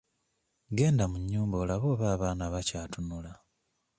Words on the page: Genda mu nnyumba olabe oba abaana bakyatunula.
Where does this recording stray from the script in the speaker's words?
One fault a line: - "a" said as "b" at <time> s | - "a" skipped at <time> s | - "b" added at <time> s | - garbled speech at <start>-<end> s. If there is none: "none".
none